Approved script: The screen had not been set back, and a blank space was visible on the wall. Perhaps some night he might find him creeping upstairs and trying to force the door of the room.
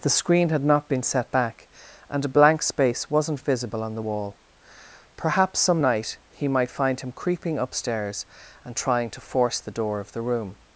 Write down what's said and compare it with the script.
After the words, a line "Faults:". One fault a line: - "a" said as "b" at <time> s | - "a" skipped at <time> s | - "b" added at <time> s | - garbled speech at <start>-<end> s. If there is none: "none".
The screen had not been set back, and a blank space wasn't visible on the wall. Perhaps some night he might find him creeping upstairs and trying to force the door of the room.
Faults:
- "was" said as "wasn't" at 3.1 s